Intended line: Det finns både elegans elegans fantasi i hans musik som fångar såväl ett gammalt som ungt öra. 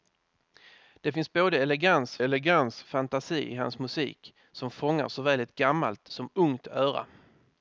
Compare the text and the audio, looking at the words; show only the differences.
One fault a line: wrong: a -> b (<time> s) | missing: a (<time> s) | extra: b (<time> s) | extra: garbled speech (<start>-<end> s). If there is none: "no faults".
no faults